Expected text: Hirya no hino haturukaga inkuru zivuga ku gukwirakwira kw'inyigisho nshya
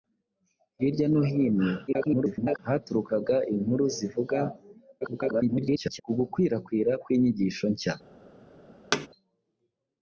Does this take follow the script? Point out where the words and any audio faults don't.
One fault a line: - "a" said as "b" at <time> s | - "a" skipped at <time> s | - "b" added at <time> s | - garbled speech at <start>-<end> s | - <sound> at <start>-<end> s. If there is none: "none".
- garbled speech at 1.9-2.6 s
- garbled speech at 5.0-6.0 s
- thud at 8.9-9.1 s